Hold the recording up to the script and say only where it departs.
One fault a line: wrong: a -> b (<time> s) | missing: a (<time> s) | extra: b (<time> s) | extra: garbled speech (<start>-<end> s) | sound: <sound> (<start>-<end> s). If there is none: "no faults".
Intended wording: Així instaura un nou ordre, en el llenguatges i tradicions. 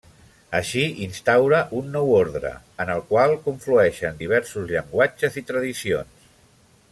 extra: qual conflueixen diversos (3.1 s)